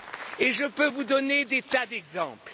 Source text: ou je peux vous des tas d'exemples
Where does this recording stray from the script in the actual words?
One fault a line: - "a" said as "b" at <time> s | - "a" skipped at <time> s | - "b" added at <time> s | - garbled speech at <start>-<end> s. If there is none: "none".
- "ou" said as "et" at 0.4 s
- "donner" added at 1.0 s